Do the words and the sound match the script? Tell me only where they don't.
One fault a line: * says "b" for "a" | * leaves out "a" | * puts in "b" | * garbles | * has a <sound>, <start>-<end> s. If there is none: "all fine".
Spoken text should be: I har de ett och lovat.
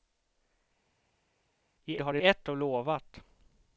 all fine